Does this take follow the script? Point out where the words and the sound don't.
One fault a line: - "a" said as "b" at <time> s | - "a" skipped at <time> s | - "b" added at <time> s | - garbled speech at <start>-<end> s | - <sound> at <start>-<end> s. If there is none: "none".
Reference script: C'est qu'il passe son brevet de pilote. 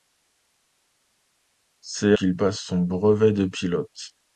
none